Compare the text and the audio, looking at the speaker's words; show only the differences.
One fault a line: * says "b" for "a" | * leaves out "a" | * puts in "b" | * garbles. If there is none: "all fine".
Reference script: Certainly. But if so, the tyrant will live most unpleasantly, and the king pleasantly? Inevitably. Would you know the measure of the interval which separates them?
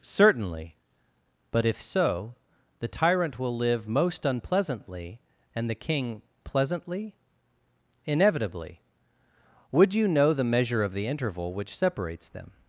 all fine